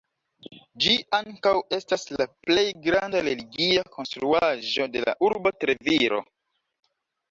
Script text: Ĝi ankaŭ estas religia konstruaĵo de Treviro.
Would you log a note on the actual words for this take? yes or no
yes